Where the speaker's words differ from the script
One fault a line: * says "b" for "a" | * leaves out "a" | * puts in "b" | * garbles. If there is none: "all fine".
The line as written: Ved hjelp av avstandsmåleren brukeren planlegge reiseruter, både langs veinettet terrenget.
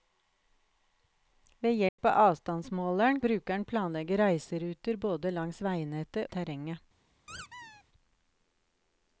all fine